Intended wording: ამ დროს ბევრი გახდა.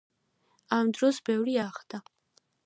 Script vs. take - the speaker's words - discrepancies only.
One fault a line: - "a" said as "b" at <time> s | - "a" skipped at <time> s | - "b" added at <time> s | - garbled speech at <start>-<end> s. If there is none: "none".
none